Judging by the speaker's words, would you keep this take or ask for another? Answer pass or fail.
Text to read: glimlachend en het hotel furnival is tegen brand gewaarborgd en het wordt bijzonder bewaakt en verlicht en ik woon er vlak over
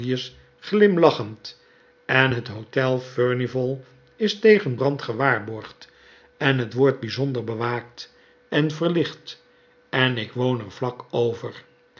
pass